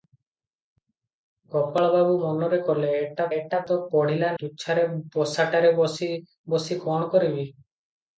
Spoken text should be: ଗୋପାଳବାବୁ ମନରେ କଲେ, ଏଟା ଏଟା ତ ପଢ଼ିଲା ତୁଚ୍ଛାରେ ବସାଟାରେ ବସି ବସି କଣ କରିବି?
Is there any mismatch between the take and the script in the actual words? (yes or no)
no